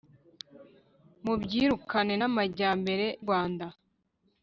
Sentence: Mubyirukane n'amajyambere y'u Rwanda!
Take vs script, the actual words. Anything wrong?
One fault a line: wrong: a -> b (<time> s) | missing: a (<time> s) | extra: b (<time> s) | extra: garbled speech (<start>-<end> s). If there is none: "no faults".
missing: y'u (3.1 s)